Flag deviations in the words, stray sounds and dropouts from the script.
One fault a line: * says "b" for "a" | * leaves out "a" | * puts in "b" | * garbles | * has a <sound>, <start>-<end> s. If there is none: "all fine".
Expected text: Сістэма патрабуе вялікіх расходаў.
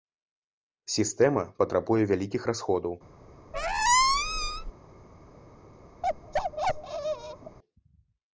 * has a squeak, 3.5-4.7 s
* has a bark, 6.0-7.6 s